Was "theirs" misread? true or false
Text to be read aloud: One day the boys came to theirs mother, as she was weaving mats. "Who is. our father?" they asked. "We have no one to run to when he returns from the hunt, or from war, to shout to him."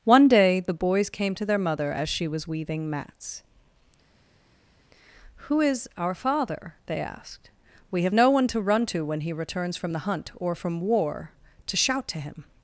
true